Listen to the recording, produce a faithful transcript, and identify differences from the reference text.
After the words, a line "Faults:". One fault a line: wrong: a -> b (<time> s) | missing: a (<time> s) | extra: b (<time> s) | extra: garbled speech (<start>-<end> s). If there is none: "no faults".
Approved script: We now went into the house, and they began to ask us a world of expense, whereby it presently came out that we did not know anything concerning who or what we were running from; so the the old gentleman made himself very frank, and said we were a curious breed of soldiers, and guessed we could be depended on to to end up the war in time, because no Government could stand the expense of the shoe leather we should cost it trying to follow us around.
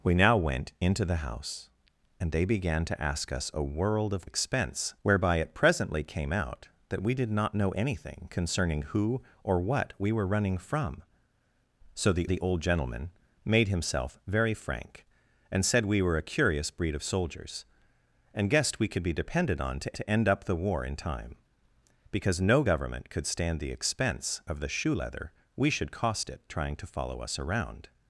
We now went into the house, and they began to ask us a world of expense, whereby it presently came out that we did not know anything concerning who or what we were running from; so the the old gentleman made himself very frank, and said we were a curious breed of soldiers, and guessed we could be depended on to to end up the war in time, because no Government could stand the expense of the shoe leather we should cost it trying to follow us around.
Faults:
no faults